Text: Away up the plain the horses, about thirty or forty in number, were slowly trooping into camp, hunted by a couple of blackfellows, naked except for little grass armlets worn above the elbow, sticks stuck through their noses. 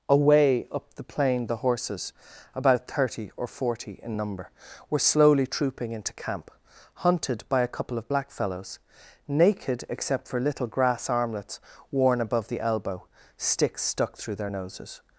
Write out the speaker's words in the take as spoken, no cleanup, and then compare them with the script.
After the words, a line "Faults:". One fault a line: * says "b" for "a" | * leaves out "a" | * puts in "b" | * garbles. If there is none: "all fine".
Away up the plain the horses, about thirty or forty in number, were slowly trooping into camp, hunted by a couple of blackfellows, naked except for little grass armlets worn above the elbow, sticks stuck through their noses.
Faults:
all fine